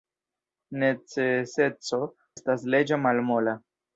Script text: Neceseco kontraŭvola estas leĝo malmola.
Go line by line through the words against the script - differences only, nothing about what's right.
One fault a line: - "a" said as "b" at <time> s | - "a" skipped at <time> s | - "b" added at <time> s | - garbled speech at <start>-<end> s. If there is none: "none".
- "kontraŭvola" skipped at 2.0 s